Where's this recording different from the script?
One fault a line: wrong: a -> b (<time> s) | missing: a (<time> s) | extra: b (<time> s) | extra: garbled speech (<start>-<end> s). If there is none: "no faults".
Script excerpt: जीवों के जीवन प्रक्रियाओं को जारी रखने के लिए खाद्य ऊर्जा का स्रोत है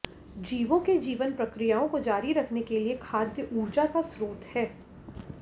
no faults